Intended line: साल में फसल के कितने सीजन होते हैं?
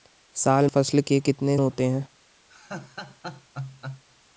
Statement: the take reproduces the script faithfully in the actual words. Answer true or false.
false